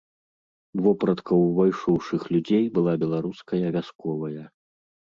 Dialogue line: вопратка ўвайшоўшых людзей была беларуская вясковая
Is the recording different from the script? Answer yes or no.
no